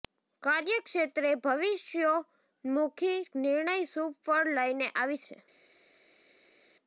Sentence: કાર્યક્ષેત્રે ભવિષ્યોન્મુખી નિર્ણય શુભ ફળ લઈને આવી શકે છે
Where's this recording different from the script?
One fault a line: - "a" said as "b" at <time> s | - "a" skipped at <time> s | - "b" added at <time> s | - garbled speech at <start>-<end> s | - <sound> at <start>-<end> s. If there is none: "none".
- "શકે" skipped at 5.2 s